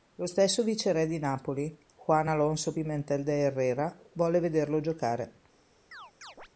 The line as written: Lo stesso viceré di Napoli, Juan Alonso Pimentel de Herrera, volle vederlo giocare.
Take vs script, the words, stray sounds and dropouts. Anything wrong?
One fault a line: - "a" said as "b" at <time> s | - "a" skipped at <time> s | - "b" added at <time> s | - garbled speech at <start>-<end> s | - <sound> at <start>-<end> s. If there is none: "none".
- chirp at 5.9-6.5 s